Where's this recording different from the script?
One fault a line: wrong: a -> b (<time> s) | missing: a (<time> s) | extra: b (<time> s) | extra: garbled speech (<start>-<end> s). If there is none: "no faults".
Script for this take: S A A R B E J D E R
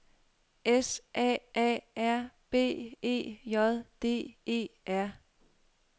no faults